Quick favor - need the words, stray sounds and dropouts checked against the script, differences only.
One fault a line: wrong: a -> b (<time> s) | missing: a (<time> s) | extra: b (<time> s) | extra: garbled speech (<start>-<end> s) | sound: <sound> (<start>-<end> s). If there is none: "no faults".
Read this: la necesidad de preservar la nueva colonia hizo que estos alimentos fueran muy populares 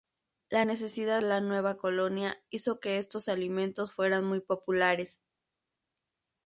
missing: de preservar (1.2 s)